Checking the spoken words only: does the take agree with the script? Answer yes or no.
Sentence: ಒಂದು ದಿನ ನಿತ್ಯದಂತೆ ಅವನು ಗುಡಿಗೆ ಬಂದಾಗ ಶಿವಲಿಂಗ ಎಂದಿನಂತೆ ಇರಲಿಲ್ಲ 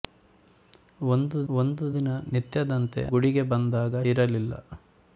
no